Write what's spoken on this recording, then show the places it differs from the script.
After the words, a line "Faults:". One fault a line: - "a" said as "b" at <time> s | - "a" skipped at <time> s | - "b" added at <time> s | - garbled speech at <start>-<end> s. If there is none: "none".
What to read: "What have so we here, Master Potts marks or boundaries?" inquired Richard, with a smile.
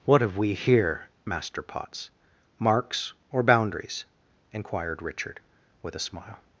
"What have we here, Master Potts marks or boundaries?" inquired Richard, with a smile.
Faults:
- "so" skipped at 0.4 s